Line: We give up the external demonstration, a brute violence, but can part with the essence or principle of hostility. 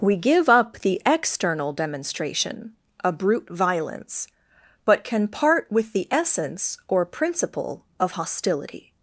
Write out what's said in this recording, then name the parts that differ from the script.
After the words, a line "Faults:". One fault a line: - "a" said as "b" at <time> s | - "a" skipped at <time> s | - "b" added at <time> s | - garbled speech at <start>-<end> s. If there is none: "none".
We give up the external demonstration, a brute violence, but can part with the essence or principle of hostility.
Faults:
none